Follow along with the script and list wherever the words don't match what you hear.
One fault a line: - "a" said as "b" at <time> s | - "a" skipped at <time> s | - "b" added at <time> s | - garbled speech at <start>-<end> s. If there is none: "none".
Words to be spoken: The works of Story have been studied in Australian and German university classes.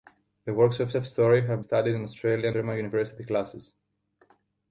- "of" added at 0.9 s
- "been" skipped at 1.6 s
- "and" skipped at 2.6 s